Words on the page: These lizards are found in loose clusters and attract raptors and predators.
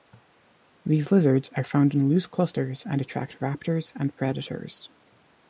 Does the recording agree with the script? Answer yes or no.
yes